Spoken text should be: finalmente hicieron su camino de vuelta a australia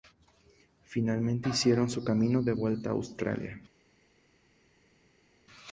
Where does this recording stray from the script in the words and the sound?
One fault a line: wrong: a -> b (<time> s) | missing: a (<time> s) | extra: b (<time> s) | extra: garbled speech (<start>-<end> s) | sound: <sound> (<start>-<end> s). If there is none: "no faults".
no faults